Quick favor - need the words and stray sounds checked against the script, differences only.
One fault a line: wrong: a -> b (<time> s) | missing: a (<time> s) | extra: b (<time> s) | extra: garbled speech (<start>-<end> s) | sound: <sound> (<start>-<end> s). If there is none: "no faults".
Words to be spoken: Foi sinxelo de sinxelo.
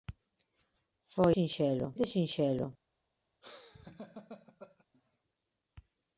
sound: laugh (3.4-4.9 s)